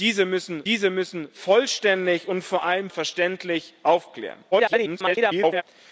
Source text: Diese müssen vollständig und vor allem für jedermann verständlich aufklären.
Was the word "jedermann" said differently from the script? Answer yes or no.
yes